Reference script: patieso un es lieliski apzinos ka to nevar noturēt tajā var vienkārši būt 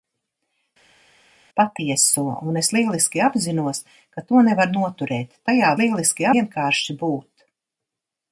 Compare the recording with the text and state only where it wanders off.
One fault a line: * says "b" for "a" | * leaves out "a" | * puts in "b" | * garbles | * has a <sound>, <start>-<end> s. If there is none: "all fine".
* says "lieliski" for "var"